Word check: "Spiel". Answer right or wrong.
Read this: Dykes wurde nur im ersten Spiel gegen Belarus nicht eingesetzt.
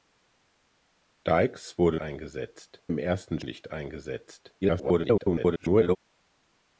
wrong